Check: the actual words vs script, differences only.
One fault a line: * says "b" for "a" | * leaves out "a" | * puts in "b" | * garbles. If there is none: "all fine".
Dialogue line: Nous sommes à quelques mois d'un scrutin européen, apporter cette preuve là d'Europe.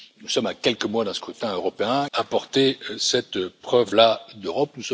all fine